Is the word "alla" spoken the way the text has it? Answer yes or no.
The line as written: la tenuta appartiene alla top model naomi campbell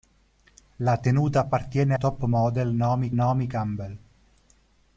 no